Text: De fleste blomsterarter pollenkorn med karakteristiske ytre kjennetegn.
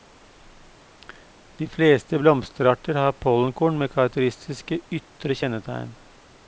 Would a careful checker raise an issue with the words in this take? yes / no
yes